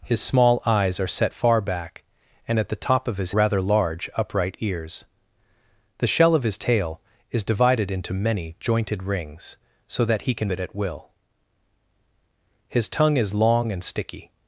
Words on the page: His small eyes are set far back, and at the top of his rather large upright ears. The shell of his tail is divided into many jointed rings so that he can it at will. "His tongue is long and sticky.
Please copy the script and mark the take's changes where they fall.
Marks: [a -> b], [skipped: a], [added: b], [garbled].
His small eyes are set far back, and at the top of his rather large upright ears. The shell of his tail is divided into many jointed rings so that he can it at will. "His tongue is long and sticky.